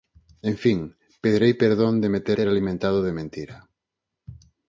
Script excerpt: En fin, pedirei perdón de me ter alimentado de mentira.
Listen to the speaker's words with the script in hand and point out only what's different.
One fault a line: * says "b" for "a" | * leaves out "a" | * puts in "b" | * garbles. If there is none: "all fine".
* puts in "ter"